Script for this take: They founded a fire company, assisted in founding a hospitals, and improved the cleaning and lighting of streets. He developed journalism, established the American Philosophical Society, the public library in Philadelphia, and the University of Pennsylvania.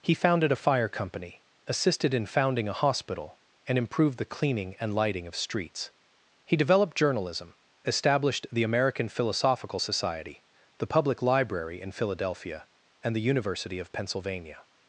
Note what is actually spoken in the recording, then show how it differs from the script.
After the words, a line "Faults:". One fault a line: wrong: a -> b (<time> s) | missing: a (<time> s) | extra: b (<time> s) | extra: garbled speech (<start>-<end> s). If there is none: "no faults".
He founded a fire company, assisted in founding a hospital, and improved the cleaning and lighting of streets. He developed journalism, established the American Philosophical Society, the public library in Philadelphia, and the University of Pennsylvania.
Faults:
wrong: They -> He (0.0 s)
wrong: hospitals -> hospital (2.8 s)